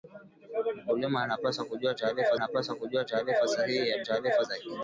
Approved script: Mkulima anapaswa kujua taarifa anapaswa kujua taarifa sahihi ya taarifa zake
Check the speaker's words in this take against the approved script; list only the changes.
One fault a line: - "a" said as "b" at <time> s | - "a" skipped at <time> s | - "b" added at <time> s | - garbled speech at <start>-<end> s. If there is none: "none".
none